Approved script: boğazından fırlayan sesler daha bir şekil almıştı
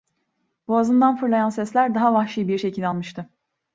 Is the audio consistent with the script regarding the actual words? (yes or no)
no